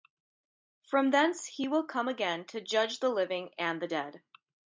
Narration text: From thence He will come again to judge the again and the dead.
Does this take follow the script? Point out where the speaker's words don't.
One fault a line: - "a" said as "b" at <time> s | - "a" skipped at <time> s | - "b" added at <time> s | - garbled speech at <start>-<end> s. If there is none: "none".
- "again" said as "living" at 3.1 s